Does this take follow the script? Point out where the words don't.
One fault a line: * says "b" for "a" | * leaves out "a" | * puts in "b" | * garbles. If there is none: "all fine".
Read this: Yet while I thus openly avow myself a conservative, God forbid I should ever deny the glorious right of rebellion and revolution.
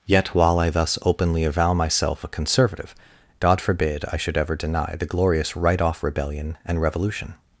* says "off" for "of"